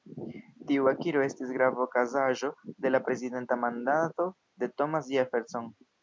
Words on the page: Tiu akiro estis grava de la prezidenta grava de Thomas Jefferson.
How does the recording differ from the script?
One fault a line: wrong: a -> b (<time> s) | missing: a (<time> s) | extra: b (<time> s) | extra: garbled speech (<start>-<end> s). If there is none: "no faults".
extra: okazaĵo (1.9 s)
wrong: grava -> mandato (3.6 s)